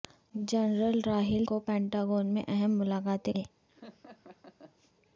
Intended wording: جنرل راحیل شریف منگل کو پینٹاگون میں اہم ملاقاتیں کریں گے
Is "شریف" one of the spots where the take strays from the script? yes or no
yes